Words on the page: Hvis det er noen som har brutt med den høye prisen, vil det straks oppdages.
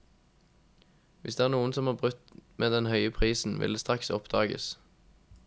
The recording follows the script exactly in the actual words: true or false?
true